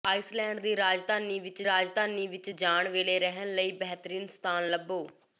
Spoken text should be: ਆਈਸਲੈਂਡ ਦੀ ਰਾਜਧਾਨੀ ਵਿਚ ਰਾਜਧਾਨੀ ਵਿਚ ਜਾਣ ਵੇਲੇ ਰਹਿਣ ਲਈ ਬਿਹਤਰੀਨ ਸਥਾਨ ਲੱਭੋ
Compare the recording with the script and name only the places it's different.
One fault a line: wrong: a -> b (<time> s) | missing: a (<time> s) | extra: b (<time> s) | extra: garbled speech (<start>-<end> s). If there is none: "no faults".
no faults